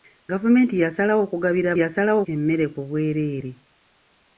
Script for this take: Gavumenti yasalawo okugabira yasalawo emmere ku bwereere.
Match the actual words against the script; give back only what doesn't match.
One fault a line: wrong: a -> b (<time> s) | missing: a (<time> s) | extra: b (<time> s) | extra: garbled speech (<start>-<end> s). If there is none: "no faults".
no faults